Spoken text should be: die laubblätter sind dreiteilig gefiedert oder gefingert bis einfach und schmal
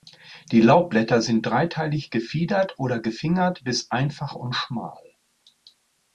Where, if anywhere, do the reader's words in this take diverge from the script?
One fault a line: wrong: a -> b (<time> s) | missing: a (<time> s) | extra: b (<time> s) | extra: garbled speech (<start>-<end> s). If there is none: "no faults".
no faults